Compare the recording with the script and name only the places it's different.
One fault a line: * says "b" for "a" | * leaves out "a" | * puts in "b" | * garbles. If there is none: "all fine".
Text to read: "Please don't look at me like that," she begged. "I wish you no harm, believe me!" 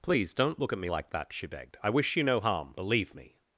all fine